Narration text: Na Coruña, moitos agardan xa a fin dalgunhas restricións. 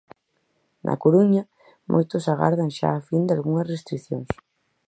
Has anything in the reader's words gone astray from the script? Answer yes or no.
no